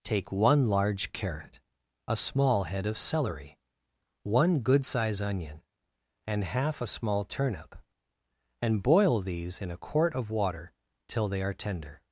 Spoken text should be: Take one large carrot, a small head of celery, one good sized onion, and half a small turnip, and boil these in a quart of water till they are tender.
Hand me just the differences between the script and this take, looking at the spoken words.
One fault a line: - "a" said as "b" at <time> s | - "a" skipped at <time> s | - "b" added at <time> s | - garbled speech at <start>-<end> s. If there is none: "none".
- "sized" said as "size" at 4.8 s